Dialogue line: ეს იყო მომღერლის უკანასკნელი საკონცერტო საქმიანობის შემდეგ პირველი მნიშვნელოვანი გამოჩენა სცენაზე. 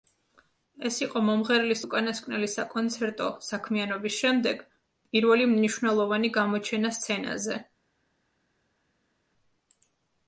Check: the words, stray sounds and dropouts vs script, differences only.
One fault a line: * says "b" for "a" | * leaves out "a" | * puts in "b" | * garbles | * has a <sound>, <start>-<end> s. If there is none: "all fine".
all fine